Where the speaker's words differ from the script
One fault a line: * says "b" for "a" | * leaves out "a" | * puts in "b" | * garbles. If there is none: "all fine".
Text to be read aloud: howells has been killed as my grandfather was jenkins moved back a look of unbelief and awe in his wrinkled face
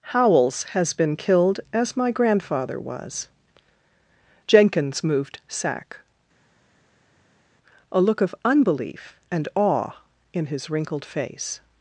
* says "sack" for "back"